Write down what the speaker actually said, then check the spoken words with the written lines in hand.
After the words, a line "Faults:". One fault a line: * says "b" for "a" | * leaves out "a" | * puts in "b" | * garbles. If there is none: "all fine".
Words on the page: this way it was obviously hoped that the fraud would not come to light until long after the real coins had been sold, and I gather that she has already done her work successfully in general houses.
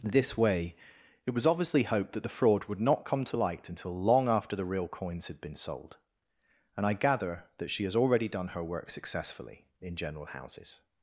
this way it was obviously hoped that the fraud would not come to light until long after the real coins had been sold, and I gather that she has already done her work successfully in general houses.
Faults:
all fine